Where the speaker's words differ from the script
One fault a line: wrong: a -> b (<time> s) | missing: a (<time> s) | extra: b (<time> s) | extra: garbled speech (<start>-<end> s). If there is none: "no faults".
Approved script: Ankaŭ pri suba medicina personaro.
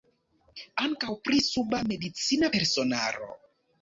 no faults